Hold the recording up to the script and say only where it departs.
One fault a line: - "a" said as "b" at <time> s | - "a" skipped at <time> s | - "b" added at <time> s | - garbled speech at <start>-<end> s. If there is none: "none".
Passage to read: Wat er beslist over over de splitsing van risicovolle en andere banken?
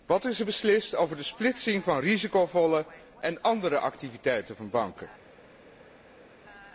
- "is" added at 0.2 s
- "over" skipped at 1.2 s
- "activiteiten van" added at 3.8 s